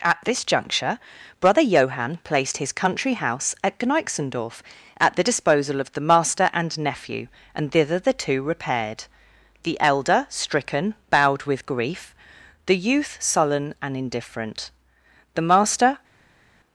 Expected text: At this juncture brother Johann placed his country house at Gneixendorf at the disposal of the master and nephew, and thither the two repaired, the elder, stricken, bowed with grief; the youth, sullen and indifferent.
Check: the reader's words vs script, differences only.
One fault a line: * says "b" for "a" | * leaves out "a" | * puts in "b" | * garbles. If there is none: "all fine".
* puts in "The master"